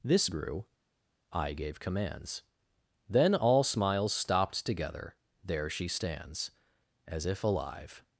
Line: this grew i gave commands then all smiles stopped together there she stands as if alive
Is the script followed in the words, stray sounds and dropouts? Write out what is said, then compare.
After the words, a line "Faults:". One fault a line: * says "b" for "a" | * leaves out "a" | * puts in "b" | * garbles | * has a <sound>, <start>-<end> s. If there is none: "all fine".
this grew i gave commands then all smiles stopped together there she stands as if alive
Faults:
all fine